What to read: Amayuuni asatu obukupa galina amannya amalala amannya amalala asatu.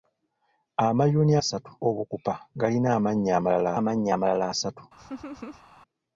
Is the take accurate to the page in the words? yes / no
yes